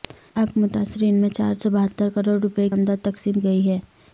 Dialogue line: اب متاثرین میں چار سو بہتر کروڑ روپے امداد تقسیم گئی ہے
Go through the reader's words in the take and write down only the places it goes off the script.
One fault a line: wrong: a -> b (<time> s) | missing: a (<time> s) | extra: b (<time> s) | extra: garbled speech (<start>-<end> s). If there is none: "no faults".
no faults